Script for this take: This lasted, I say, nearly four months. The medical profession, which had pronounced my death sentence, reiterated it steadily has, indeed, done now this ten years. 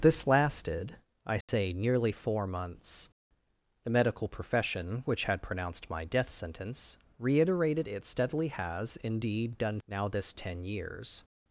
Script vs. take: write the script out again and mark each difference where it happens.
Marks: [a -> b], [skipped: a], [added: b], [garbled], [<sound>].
This lasted, I say, [dropout] nearly four months. The medical profession, which had pronounced my death sentence, reiterated it steadily has, indeed, done now this ten years.